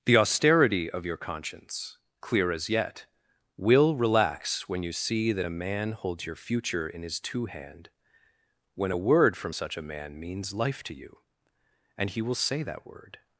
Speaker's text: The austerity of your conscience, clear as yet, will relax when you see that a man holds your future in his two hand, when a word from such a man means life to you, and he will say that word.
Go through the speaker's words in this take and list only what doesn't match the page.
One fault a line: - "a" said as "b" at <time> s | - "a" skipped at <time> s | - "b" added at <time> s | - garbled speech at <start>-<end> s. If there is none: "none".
none